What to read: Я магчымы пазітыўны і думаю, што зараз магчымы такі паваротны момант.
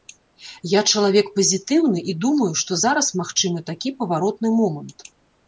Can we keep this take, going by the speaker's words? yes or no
no